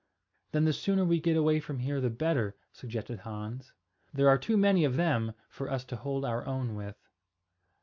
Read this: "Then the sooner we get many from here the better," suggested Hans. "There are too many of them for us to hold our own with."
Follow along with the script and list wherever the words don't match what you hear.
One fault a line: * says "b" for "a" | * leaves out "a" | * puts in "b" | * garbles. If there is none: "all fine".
* says "away" for "many"